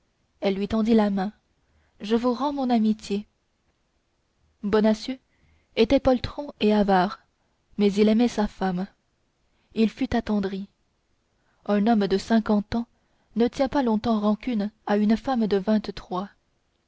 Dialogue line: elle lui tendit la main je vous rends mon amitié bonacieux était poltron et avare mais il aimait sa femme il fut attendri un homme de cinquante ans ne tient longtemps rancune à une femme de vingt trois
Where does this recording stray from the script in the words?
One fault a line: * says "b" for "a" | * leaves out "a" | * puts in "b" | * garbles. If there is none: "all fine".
* puts in "pas"